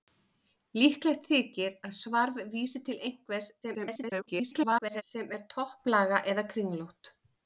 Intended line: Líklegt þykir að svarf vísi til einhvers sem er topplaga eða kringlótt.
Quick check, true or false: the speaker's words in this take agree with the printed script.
false